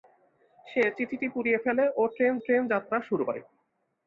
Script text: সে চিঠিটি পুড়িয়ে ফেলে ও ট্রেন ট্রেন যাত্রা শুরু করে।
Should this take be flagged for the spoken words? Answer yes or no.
no